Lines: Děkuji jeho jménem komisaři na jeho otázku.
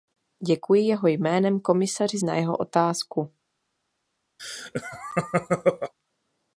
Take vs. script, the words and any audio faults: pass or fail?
fail